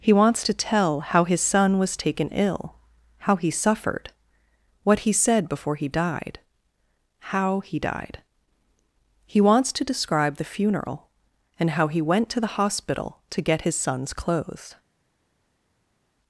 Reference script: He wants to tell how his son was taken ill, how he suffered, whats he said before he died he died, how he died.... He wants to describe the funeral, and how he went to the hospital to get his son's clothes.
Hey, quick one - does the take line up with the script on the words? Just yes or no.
no